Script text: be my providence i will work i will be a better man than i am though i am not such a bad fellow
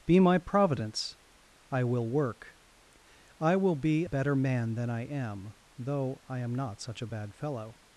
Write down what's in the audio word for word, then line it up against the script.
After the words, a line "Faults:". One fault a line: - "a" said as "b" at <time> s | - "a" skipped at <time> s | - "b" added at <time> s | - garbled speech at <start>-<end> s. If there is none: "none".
be my providence i will work i will be better man than i am though i am not such a bad fellow
Faults:
- "a" skipped at 4.0 s